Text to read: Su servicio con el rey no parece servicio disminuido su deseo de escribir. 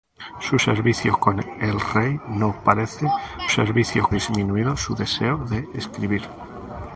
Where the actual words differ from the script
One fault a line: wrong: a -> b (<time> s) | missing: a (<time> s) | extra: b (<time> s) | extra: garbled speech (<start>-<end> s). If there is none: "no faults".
no faults